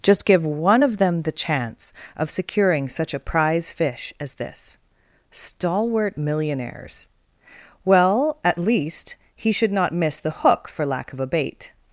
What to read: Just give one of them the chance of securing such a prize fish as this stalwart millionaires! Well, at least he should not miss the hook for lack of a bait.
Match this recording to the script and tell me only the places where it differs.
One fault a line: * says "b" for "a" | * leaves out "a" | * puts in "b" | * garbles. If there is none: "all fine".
all fine